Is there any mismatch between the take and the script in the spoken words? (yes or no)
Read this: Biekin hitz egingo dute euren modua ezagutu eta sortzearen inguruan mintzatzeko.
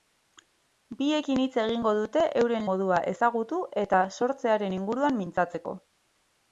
no